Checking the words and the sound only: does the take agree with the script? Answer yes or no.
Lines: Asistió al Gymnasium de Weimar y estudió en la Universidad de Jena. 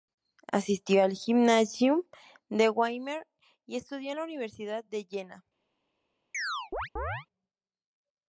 no